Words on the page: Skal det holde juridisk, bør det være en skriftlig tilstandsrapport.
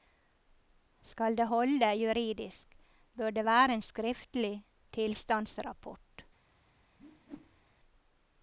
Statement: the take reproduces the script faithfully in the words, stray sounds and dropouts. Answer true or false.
false